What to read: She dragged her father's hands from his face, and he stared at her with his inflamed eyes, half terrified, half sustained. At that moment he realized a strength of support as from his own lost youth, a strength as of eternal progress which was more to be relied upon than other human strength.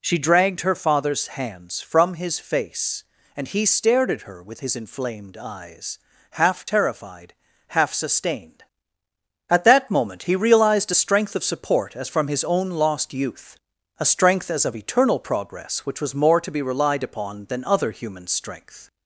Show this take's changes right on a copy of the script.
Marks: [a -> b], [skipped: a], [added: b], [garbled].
She dragged her father's hands from his face, and he stared at her with his inflamed eyes, half terrified, half sustained. At that moment he realized a strength of support as from his own lost youth, a strength as of eternal progress which was more to be relied upon than other human strength.